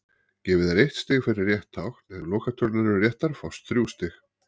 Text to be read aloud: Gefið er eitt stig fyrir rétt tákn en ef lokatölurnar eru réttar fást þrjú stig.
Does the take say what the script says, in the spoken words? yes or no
no